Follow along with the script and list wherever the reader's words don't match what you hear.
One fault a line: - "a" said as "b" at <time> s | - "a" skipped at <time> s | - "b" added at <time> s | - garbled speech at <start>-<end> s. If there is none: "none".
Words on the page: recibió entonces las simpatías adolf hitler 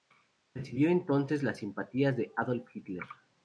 - "de" added at 2.2 s